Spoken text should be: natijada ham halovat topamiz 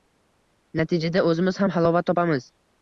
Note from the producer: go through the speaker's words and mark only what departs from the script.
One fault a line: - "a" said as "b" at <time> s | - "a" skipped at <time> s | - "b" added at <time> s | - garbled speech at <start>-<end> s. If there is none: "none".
- "o‘zimiz" added at 1.3 s